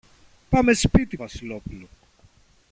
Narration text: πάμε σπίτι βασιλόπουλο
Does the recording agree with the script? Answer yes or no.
yes